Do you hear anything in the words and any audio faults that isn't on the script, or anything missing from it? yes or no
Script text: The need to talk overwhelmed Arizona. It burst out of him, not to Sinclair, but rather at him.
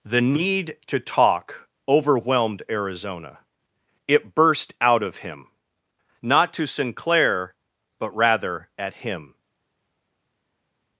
no